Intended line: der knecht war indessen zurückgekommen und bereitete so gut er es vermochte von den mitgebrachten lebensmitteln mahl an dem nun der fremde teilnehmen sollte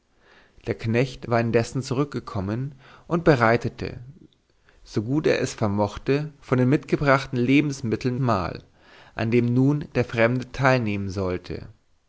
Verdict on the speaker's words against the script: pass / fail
pass